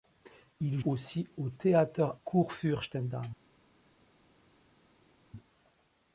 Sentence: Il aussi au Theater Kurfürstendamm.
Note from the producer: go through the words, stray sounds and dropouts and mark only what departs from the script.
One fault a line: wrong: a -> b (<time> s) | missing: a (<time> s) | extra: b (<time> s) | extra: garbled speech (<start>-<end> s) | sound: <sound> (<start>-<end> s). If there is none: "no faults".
no faults